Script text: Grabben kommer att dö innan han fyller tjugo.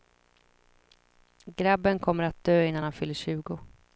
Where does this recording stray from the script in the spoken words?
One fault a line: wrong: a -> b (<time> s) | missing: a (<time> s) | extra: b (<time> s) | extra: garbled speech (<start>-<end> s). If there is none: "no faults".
no faults